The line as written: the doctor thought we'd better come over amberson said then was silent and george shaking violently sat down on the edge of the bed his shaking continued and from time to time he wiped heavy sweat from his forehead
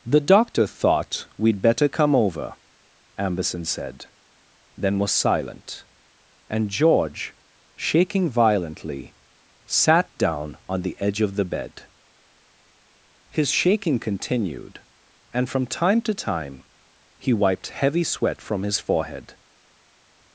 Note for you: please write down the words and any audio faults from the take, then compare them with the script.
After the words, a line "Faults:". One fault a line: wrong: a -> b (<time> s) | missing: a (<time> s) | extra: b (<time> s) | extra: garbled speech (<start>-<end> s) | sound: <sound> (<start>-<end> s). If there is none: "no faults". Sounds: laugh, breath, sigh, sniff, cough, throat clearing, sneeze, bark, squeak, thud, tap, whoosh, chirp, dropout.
the doctor thought we'd better come over amberson said then was silent and george shaking violently sat down on the edge of the bed his shaking continued and from time to time he wiped heavy sweat from his forehead
Faults:
no faults